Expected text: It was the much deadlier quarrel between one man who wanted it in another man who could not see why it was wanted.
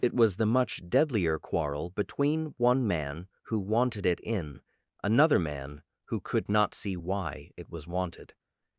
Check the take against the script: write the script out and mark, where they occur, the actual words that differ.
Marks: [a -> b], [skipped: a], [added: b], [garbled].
It was the much deadlier quarrel between one man who wanted it in another man who could not see why it was wanted.